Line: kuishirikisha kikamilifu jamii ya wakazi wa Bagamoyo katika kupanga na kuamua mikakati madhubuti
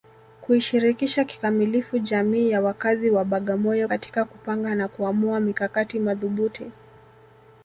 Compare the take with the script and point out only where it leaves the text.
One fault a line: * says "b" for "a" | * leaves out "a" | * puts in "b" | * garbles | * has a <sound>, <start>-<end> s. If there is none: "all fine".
all fine